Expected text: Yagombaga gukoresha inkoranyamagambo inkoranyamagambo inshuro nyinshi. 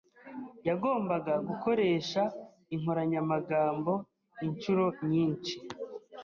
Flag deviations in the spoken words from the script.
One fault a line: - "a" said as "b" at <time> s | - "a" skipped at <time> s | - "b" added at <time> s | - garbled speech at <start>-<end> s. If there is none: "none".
- "inkoranyamagambo" skipped at 3.9 s